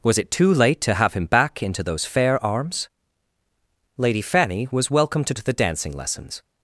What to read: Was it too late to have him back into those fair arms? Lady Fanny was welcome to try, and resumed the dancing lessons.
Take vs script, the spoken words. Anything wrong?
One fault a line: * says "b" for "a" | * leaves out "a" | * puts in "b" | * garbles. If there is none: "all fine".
* leaves out "try and resumed"